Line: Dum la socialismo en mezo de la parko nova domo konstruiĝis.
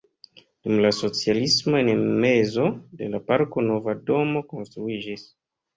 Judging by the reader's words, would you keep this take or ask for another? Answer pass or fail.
pass